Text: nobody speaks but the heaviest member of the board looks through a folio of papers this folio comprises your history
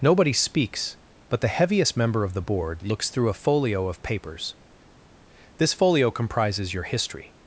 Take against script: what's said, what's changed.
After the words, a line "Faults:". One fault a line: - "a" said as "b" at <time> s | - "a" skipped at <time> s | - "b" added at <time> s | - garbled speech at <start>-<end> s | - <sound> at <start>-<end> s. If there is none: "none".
nobody speaks but the heaviest member of the board looks through a folio of papers this folio comprises your history
Faults:
none